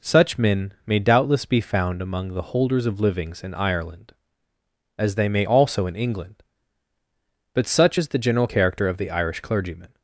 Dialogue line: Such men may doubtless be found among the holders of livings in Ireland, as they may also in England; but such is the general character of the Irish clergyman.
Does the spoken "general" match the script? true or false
true